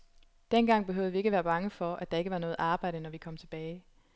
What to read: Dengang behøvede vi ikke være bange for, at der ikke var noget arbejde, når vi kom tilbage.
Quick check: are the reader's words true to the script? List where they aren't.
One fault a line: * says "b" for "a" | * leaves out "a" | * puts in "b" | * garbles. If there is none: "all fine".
all fine